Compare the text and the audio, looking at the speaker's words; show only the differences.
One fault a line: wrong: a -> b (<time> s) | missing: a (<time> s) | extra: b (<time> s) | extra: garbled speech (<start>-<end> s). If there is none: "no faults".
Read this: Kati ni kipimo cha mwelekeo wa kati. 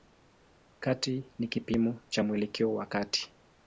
no faults